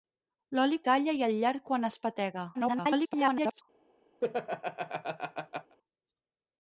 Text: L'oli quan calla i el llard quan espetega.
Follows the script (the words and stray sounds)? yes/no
no